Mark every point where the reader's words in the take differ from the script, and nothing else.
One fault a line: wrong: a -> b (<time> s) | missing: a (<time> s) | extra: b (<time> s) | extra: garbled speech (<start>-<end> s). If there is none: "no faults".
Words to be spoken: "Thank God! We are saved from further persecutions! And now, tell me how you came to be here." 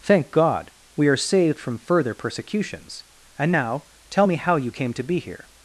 no faults